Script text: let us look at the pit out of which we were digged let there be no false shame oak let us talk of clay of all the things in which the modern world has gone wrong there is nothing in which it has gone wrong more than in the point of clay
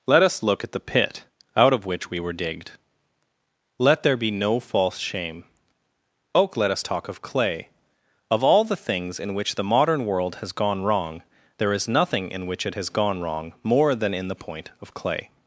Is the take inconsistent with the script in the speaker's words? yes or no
no